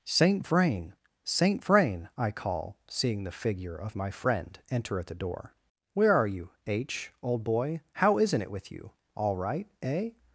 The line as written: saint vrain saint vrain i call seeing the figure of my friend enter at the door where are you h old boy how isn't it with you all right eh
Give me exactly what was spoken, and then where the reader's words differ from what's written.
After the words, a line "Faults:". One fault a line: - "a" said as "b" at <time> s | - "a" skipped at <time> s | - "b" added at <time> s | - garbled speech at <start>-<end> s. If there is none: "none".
saint vrain saint vrain i call seeing the figure of my friend enter at the door where are you h old boy how isn't it with you all right eh
Faults:
none